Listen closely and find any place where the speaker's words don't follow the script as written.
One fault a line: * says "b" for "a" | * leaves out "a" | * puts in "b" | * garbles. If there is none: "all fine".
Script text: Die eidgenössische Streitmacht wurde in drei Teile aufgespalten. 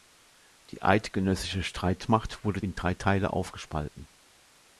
all fine